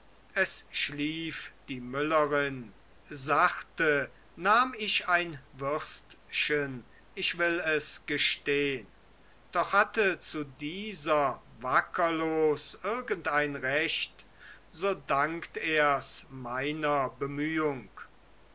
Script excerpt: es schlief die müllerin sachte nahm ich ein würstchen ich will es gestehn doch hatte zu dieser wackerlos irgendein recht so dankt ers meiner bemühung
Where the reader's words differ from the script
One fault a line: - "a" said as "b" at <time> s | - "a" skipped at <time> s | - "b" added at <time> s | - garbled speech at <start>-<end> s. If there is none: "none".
none